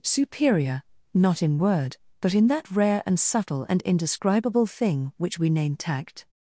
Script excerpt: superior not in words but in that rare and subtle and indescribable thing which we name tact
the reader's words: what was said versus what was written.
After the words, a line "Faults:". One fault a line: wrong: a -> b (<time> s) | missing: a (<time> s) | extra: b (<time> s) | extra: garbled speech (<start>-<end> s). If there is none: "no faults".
superior not in word but in that rare and subtle and indescribable thing which we name tact
Faults:
wrong: words -> word (1.6 s)